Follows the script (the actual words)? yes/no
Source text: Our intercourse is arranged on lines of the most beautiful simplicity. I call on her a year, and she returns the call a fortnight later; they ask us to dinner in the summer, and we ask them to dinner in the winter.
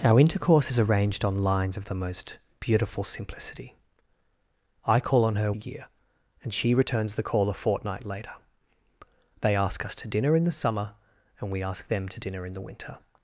yes